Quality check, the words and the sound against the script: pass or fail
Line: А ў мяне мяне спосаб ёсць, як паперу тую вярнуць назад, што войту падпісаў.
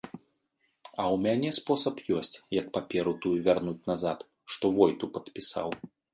fail